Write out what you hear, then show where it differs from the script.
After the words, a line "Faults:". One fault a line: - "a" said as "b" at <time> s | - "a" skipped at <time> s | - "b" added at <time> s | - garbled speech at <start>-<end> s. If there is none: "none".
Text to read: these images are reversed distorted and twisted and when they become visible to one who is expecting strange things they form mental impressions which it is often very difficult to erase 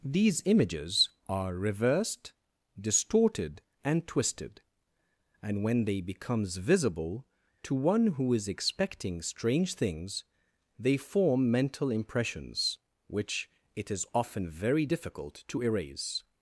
these images are reversed distorted and twisted and when they becomes visible to one who is expecting strange things they form mental impressions which it is often very difficult to erase
Faults:
- "become" said as "becomes" at 6.0 s